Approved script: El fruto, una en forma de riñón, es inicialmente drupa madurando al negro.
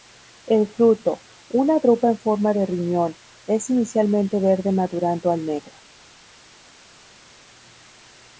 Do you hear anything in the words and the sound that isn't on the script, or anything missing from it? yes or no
yes